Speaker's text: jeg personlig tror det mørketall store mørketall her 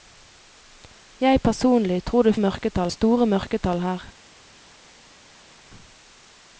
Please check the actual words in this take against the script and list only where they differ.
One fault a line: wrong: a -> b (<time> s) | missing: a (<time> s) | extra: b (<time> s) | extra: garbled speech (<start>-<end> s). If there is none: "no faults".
no faults